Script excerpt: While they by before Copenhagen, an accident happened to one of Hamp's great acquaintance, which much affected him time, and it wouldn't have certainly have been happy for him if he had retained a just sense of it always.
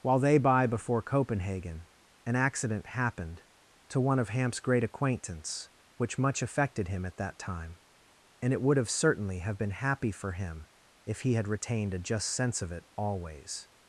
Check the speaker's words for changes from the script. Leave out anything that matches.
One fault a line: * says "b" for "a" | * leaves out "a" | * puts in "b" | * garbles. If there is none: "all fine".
* puts in "at that"
* says "would" for "wouldn't"